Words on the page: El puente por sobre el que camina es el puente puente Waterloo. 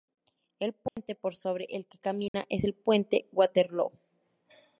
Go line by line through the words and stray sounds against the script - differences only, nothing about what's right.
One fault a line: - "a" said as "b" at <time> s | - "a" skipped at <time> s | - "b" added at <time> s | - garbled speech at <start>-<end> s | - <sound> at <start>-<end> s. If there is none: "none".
- dropout at 0.9-1.0 s
- dropout at 2.3-2.3 s
- "puente" skipped at 3.3 s